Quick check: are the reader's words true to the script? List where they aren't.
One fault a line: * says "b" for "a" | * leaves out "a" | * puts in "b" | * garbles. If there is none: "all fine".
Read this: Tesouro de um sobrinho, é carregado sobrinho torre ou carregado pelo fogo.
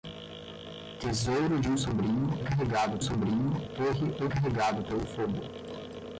all fine